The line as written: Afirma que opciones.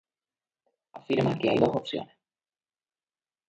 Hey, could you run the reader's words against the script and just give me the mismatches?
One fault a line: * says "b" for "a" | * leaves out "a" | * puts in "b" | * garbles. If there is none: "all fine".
* puts in "hay dos"